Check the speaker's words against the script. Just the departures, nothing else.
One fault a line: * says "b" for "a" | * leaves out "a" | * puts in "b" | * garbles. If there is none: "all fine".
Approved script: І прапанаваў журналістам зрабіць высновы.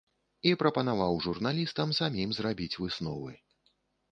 * puts in "самім"